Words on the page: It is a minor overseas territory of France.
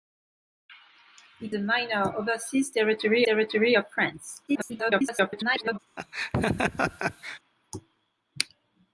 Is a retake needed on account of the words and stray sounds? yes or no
yes